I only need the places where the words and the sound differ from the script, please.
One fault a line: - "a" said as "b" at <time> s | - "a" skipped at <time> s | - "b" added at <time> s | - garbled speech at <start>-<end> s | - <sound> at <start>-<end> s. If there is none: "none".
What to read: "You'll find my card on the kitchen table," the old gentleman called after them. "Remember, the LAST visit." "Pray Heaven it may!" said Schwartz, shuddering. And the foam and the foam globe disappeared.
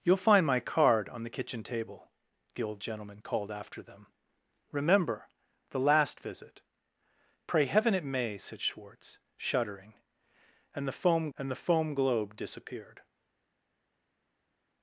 none